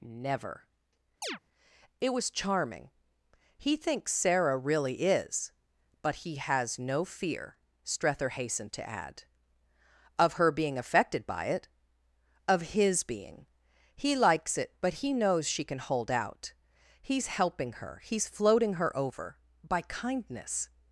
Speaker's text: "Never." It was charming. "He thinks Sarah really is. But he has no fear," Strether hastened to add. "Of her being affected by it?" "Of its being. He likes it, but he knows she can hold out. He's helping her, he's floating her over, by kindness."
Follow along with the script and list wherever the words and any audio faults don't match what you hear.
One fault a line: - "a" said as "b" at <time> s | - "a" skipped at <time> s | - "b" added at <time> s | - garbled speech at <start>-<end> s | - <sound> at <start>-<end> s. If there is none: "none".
- chirp at 1.2-1.4 s
- "its" said as "his" at 12.7 s